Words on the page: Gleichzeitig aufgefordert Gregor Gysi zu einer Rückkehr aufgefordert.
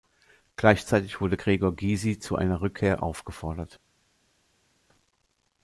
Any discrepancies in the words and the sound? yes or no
yes